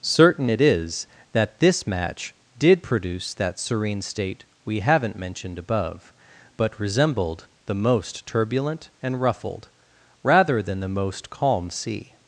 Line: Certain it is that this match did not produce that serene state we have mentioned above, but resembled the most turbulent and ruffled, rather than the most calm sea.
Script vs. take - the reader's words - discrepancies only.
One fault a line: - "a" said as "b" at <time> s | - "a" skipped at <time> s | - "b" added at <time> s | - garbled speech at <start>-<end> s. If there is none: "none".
- "not" skipped at 2.8 s
- "have" said as "haven't" at 4.8 s